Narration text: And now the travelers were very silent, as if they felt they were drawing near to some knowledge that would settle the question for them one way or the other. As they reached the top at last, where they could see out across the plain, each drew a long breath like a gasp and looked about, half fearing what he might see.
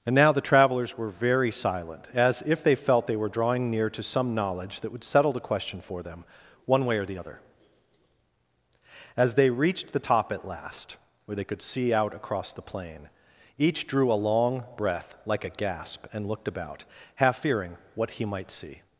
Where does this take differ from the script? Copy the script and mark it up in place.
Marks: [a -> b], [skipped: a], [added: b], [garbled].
And now the travelers were very silent, as if they felt they were drawing near to some knowledge that would settle the question for them one way or the other. As they reached the top at last, where they could see out across the plain, each drew a long breath like a gasp and looked about, half fearing what he might see.